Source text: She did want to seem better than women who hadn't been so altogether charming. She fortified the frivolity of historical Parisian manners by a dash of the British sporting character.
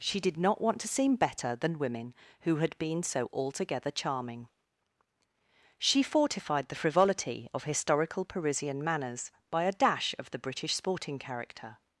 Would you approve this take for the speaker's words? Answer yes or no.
no